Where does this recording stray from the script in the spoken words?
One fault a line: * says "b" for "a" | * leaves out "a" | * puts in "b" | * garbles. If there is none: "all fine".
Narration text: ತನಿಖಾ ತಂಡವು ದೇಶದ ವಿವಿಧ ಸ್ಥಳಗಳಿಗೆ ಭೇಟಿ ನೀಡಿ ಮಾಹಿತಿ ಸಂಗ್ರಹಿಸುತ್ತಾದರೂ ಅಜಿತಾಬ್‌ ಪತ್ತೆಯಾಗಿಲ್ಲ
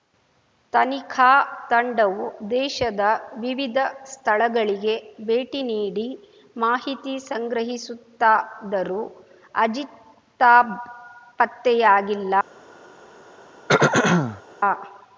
all fine